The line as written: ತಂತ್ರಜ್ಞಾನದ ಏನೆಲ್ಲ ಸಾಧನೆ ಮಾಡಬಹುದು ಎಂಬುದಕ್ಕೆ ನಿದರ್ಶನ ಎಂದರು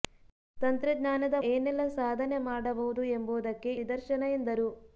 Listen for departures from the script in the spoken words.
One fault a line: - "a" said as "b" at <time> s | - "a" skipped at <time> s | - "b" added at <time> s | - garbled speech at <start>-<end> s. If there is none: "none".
none